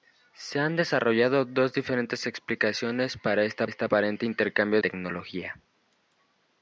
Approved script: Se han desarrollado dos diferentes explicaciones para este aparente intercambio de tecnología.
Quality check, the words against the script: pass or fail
fail